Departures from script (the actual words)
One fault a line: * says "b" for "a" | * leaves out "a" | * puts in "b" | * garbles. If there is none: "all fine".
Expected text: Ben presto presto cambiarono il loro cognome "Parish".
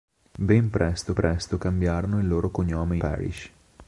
all fine